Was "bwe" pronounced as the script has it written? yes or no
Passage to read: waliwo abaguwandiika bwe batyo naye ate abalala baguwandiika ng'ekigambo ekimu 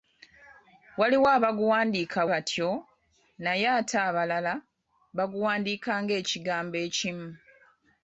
no